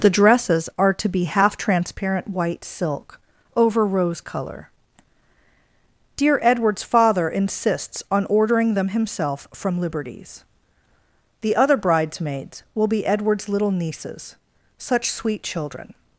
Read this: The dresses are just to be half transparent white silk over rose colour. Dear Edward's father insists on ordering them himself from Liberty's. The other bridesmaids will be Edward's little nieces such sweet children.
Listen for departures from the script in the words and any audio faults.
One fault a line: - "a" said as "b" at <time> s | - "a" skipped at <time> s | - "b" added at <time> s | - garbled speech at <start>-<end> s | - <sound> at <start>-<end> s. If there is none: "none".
- "just" skipped at 0.9 s